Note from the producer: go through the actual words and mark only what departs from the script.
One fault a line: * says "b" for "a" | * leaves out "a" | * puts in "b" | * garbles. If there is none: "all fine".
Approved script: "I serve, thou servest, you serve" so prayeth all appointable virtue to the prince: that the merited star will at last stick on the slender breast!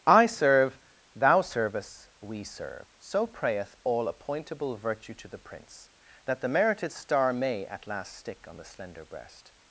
* says "we" for "you"
* says "may" for "will"